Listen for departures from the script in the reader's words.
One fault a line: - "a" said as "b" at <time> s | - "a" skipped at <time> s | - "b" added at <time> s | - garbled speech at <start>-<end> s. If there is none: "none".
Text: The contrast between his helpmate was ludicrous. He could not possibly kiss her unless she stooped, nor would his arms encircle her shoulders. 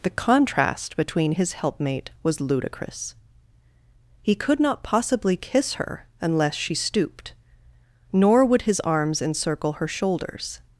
none